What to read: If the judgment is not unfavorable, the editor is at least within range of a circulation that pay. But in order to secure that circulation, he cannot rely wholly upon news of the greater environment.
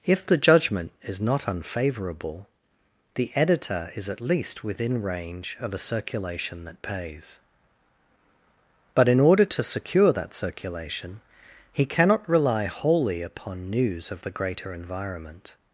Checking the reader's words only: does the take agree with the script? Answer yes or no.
no